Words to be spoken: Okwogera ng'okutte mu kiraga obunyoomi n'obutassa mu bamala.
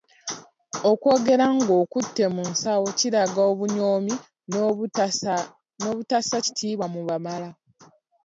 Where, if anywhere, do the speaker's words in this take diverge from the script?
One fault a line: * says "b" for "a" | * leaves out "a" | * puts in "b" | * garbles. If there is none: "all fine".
* puts in "nsawo"
* puts in "kitiibwa"